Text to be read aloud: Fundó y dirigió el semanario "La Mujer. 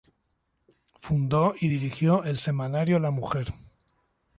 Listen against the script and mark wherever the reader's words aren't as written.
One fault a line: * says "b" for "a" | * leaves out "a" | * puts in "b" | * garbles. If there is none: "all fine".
all fine